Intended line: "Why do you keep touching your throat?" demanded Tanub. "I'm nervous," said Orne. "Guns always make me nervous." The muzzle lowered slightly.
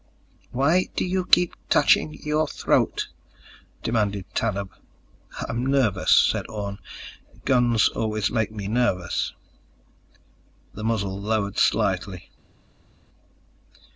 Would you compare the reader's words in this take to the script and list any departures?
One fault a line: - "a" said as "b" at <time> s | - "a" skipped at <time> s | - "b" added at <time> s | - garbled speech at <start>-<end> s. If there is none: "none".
none